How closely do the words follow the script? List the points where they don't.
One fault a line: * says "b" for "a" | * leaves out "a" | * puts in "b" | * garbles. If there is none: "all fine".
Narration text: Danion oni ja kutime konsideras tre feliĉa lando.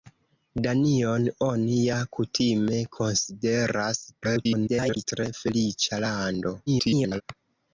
* garbles
* garbles